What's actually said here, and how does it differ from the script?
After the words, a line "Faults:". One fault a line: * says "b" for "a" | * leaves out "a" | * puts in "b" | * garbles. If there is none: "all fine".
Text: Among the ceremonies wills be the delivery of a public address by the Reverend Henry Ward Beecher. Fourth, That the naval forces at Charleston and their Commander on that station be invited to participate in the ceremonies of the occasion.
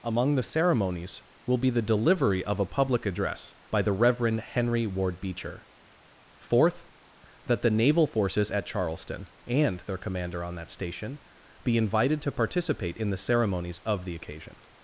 Among the ceremonies will be the delivery of a public address by the Reverend Henry Ward Beecher. Fourth, That the naval forces at Charleston and their Commander on that station be invited to participate in the ceremonies of the occasion.
Faults:
* says "will" for "wills"